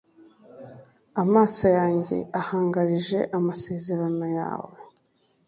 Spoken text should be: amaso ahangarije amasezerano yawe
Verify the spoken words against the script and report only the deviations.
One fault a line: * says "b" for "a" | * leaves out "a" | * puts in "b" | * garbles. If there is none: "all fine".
* puts in "yanjye"